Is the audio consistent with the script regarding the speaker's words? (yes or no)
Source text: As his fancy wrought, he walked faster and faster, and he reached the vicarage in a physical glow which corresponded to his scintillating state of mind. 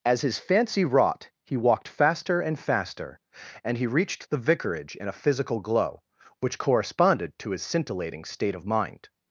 yes